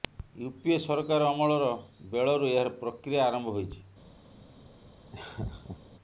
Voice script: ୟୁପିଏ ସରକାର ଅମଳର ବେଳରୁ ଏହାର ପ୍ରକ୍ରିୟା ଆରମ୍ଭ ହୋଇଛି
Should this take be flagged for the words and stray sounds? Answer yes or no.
yes